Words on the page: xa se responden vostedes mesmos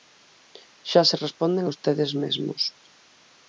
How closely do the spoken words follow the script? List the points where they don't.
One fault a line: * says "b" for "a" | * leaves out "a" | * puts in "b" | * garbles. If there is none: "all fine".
all fine